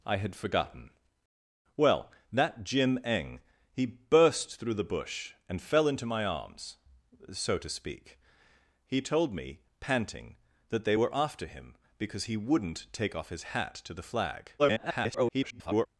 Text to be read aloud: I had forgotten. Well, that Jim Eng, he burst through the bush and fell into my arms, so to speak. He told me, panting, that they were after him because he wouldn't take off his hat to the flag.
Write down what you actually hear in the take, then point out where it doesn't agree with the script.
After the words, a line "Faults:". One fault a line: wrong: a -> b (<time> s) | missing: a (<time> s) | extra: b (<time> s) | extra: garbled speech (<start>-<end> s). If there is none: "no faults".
I had forgotten. Well, that Jim Eng, he burst through the bush and fell into my arms, so to speak. He told me, panting, that they were after him because he wouldn't take off his hat to the flag. [garbled]
Faults:
extra: garbled speech (14.6-15.9 s)